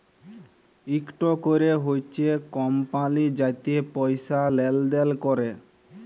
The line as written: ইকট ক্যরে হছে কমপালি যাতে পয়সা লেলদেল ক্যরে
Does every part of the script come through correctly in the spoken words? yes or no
yes